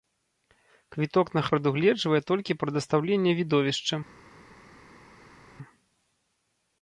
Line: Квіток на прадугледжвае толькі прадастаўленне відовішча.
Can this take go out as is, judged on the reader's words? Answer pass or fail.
pass